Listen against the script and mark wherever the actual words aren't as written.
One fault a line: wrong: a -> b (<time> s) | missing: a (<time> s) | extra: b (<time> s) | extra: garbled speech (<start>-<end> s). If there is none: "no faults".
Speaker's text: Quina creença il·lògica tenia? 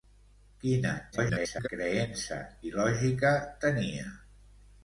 extra: garbled speech (1.1-1.7 s)